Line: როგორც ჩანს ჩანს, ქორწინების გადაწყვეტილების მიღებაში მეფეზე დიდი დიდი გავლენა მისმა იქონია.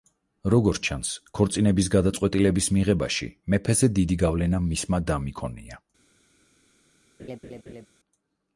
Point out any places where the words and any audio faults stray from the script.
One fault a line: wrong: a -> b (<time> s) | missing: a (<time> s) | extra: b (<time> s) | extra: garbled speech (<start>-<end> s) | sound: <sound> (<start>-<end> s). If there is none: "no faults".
missing: ჩანს (1.1 s)
missing: დიდი (4.2 s)
extra: დამ (5.1 s)
sound: laugh (7.2-7.9 s)